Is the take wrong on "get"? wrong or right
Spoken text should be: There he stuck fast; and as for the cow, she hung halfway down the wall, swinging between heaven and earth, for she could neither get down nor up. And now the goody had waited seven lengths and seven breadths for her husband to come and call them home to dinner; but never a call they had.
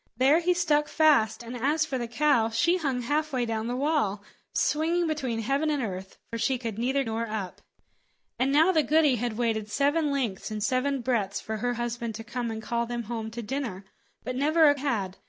wrong